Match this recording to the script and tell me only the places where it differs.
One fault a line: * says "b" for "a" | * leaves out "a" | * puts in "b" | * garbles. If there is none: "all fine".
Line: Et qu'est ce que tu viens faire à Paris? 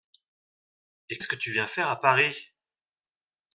* leaves out "qu'est"